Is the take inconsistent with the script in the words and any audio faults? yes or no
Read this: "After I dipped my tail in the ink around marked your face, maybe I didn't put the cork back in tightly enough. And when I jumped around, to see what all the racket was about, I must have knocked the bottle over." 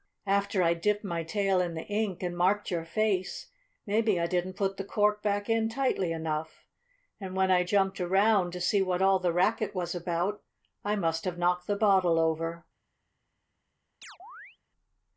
yes